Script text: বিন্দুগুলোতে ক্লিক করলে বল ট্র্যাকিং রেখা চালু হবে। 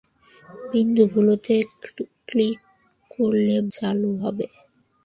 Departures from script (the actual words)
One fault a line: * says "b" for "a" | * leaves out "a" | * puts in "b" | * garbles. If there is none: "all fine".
* leaves out "বল ট্র্যাকিং রেখা"